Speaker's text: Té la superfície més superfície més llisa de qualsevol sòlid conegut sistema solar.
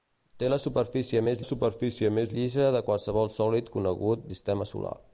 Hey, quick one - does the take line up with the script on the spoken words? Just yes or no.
yes